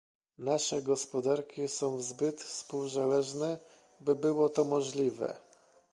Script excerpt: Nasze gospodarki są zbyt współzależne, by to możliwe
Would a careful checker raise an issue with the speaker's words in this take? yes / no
yes